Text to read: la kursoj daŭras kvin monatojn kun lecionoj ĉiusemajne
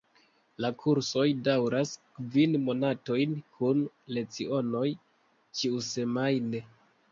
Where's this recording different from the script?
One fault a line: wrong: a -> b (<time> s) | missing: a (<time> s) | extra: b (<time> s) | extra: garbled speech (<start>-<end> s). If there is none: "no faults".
no faults